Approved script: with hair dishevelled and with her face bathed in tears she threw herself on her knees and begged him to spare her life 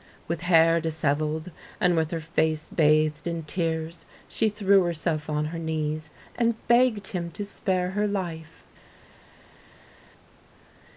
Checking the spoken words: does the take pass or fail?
pass